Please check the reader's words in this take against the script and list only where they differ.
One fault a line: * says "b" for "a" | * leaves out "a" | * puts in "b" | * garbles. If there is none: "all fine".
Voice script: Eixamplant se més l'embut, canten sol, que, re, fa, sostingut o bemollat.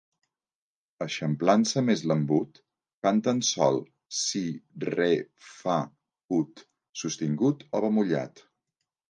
* says "si" for "que"
* puts in "ut"